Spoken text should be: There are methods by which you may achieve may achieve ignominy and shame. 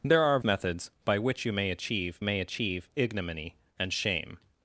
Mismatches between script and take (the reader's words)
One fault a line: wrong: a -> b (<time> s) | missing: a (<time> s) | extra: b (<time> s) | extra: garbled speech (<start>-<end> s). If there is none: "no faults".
no faults